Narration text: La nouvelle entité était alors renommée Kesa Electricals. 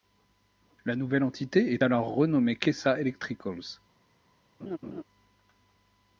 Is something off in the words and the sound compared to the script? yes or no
yes